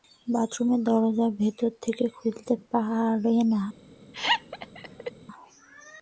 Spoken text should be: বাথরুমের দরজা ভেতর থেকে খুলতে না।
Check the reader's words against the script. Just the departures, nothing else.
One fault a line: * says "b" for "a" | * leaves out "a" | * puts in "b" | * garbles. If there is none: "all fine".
* puts in "পারে"